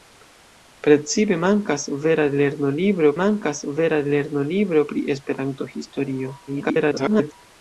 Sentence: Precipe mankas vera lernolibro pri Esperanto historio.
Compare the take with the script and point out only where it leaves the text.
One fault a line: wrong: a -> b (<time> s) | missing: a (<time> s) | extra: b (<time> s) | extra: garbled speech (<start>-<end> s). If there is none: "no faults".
extra: mankas vera lernolibro (3.2 s)
extra: garbled speech (6.5-7.3 s)